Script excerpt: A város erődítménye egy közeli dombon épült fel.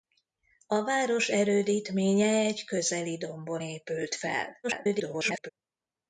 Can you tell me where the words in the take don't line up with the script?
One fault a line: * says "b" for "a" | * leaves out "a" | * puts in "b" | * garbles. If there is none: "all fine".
* garbles